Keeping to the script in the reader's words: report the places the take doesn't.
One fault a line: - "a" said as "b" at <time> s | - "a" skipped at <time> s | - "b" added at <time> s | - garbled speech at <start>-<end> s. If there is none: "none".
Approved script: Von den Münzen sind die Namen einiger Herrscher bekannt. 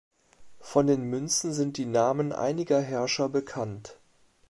none